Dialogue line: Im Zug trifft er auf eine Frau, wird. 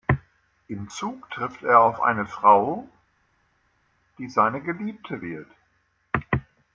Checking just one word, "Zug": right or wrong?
right